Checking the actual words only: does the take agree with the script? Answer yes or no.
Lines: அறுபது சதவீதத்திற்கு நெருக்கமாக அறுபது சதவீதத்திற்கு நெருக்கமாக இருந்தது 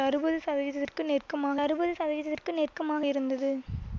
yes